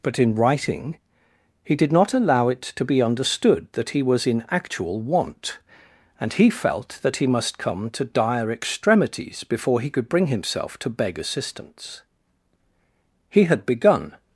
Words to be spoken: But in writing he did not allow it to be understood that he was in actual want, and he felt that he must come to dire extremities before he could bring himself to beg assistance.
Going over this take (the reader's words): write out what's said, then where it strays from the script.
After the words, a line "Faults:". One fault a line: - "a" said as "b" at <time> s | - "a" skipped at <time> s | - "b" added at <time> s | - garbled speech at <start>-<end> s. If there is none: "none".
But in writing he did not allow it to be understood that he was in actual want, and he felt that he must come to dire extremities before he could bring himself to beg assistance. He had begun
Faults:
- "He had begun" added at 13.3 s